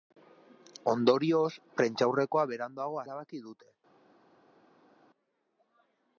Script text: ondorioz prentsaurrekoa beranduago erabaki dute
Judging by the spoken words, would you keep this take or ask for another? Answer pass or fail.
pass